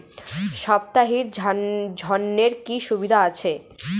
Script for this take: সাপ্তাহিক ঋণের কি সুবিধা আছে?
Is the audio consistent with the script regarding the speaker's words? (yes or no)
yes